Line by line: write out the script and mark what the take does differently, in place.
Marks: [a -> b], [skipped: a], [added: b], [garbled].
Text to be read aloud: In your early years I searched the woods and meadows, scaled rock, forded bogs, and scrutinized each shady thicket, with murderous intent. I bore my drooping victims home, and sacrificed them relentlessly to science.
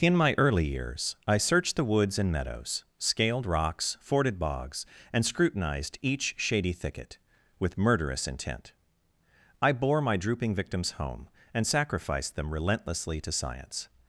In [your -> my] early years I searched the woods and meadows, scaled [rock, -> rocks] forded bogs, and scrutinized each shady thicket, with murderous intent. I bore my drooping victims home, and sacrificed them relentlessly to science.